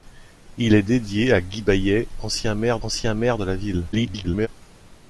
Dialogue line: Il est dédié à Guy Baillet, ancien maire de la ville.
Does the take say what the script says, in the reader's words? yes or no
no